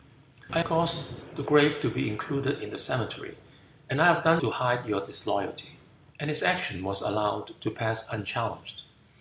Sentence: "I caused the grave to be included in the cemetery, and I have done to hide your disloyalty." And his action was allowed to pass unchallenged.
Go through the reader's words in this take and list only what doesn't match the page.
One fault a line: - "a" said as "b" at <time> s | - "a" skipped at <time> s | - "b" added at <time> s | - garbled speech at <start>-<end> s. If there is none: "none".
none